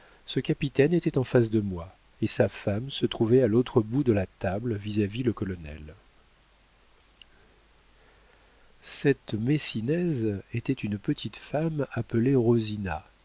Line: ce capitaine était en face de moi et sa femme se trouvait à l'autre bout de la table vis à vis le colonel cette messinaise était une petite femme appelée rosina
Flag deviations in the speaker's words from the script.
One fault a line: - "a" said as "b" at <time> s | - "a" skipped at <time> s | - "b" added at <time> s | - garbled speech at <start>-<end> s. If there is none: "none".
none